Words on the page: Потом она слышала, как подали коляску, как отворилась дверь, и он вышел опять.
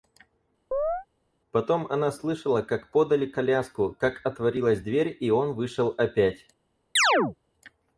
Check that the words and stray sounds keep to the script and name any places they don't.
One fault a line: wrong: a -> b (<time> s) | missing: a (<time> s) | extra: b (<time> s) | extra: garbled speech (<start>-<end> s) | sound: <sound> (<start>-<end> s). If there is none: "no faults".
sound: chirp (0.7-1.1 s)
sound: chirp (7.0-7.4 s)